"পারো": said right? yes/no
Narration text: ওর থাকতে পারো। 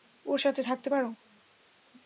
yes